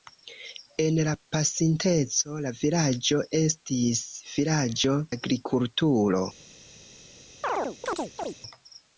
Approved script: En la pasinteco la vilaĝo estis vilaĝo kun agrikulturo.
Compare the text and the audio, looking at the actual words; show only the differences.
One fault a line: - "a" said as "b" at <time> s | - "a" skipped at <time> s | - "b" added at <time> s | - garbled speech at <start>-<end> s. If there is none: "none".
- "kun" skipped at 5.0 s